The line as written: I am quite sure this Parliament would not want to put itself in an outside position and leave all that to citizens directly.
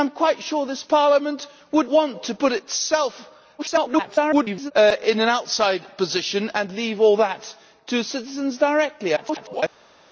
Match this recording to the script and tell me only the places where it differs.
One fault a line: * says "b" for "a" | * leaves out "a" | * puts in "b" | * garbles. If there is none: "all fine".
* leaves out "not"
* garbles
* garbles